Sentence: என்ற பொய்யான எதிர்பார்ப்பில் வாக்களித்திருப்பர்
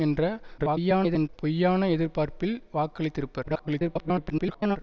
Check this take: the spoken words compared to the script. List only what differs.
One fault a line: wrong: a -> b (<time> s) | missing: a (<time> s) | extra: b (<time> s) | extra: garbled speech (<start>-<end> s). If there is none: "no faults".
extra: garbled speech (0.6-1.3 s)
extra: garbled speech (3.4-4.8 s)